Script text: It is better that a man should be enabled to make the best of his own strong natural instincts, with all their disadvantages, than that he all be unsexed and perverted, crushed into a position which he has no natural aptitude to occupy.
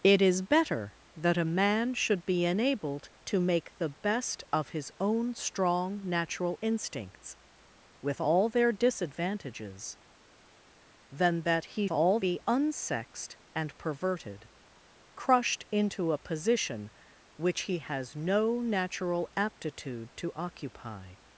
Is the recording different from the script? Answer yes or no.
no